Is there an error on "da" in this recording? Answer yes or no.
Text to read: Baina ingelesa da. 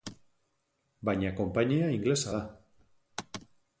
no